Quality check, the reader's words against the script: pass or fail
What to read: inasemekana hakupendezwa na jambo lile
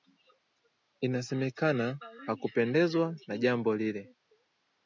pass